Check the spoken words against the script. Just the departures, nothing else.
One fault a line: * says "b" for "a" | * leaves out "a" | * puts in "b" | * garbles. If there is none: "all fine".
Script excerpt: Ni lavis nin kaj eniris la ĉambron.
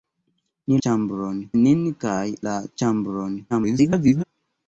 * says "ĉambron" for "lavis"
* leaves out "eniris"
* garbles